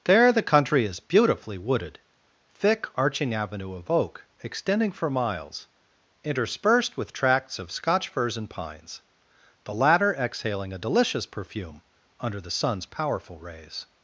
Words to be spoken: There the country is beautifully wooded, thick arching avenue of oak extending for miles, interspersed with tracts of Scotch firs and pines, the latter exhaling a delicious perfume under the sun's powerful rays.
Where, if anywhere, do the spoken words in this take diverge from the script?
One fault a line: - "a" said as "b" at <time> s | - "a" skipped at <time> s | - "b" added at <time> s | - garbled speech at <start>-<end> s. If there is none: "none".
none